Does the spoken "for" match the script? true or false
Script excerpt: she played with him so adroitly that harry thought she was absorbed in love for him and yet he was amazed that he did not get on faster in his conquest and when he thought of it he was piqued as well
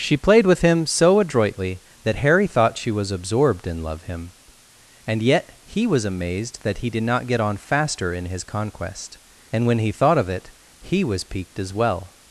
false